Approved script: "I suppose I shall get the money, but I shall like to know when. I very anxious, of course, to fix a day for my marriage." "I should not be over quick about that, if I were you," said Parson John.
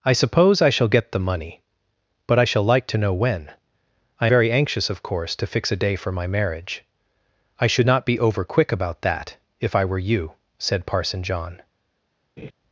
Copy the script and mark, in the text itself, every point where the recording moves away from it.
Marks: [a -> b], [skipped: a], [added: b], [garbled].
"I suppose I shall get the money, but I shall like to know when. I very anxious, of course, to fix a day for my marriage." "I should not be over quick about that, if I were you," said Parson John.